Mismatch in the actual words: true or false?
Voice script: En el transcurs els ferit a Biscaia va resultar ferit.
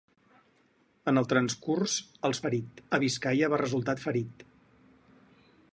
false